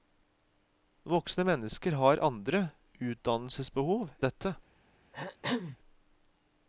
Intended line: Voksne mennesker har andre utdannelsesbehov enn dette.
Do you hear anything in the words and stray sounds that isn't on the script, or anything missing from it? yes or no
yes